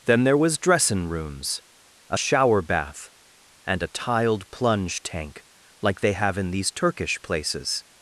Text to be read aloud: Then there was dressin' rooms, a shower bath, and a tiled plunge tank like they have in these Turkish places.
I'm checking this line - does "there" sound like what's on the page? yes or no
yes